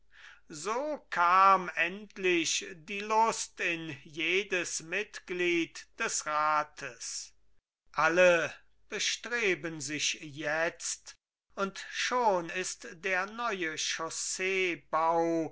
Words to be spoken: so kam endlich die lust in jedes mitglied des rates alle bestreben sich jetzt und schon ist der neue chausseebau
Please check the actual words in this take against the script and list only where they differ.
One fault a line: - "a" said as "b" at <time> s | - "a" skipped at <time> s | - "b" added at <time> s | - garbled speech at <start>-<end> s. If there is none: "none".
none